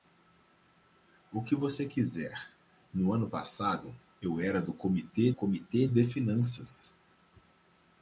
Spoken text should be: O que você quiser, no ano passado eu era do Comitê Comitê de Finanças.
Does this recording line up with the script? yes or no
yes